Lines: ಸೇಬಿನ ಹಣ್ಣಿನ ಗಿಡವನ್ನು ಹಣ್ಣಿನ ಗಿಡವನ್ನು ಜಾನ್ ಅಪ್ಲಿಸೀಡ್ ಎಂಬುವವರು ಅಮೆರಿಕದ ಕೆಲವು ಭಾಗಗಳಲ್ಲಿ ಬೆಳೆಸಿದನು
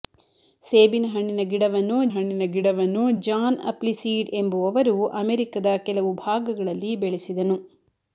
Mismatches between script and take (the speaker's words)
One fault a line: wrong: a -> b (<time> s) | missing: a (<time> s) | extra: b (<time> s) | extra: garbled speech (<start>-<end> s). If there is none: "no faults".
no faults